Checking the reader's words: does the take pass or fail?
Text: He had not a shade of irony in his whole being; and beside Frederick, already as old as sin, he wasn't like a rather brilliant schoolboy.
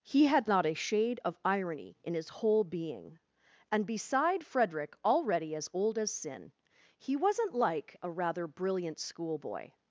pass